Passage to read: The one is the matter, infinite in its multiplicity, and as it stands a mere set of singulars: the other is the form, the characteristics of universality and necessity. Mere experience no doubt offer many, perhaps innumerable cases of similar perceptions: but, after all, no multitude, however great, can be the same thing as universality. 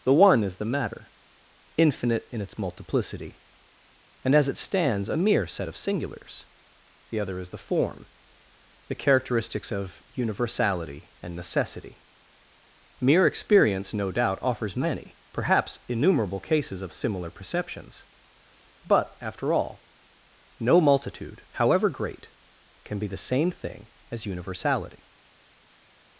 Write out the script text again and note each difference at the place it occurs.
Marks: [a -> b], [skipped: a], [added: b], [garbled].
The one is the matter, infinite in its multiplicity, and as it stands a mere set of singulars: the other is the form, the characteristics of universality and necessity. Mere experience no doubt [offer -> offers] many, perhaps innumerable cases of similar perceptions: but, after all, no multitude, however great, can be the same thing as universality.